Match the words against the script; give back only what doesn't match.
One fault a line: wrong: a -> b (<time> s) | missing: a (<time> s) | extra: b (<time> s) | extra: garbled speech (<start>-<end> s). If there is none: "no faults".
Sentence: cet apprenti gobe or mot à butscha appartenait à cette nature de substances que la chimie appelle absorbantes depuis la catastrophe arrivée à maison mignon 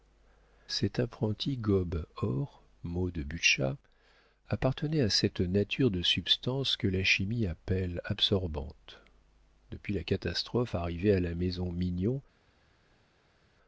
wrong: à -> de (3.1 s)
extra: la (11.2 s)